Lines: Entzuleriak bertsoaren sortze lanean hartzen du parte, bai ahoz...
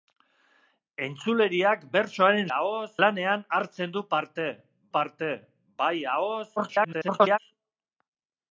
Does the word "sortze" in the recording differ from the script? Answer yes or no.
yes